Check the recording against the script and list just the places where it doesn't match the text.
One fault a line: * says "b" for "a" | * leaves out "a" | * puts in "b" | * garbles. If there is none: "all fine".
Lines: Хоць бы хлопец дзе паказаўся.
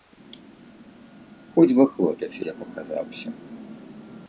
all fine